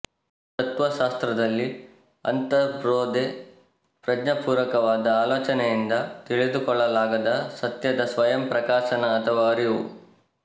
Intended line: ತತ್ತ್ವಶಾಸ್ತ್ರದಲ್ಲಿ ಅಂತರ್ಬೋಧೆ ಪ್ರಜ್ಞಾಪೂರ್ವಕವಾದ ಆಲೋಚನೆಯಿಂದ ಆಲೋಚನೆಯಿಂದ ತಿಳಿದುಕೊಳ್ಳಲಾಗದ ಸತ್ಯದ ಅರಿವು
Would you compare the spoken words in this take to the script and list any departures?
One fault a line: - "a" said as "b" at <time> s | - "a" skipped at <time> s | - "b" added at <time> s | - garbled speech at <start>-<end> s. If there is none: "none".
- "ಆಲೋಚನೆಯಿಂದ" skipped at 5.9 s
- "ಸ್ವಯಂ ಪ್ರಕಾಶನ ಅಥವಾ" added at 8.0 s